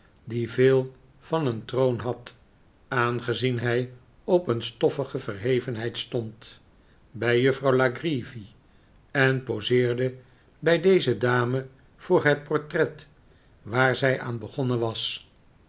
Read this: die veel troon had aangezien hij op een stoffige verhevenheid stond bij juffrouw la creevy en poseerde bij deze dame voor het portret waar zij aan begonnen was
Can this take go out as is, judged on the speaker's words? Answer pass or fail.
fail